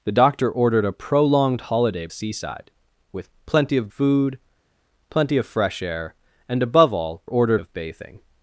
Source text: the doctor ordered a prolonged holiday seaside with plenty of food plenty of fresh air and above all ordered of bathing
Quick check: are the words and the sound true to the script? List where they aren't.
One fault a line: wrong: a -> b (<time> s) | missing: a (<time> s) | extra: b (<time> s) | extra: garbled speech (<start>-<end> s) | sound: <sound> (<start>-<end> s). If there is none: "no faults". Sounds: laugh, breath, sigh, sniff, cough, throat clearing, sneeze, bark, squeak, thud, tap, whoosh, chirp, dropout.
no faults